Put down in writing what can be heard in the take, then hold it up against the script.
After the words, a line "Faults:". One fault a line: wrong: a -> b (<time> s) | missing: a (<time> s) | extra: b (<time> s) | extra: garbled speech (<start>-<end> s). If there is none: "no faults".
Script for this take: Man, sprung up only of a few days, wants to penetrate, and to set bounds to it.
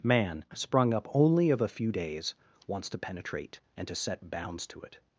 Man, sprung up only of a few days, wants to penetrate, and to set bounds to it.
Faults:
no faults